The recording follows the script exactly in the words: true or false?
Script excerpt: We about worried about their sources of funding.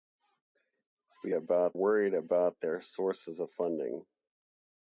true